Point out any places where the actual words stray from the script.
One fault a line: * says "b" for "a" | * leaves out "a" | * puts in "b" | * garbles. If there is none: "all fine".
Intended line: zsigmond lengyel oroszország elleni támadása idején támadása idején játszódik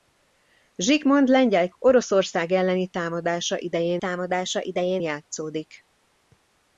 all fine